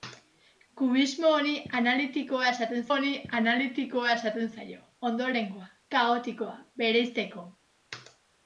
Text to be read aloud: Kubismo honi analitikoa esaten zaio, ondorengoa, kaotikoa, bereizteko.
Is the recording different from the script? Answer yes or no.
yes